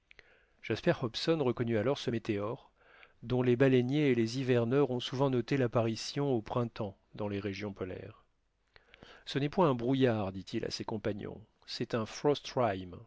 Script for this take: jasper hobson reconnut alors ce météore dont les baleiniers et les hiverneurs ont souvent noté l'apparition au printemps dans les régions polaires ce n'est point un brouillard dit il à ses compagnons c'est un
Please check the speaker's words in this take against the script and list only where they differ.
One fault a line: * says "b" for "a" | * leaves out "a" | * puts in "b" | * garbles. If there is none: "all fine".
all fine